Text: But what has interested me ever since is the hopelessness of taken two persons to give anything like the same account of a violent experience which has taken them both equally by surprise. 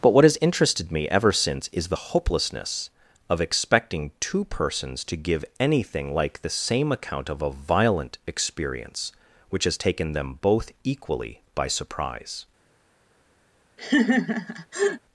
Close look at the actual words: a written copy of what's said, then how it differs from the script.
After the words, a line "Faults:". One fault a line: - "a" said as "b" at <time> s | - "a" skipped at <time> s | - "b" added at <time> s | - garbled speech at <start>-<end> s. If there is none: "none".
But what has interested me ever since is the hopelessness of expecting two persons to give anything like the same account of a violent experience which has taken them both equally by surprise.
Faults:
- "taken" said as "expecting" at 3.4 s